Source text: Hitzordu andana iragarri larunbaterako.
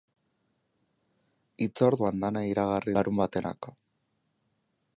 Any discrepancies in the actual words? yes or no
no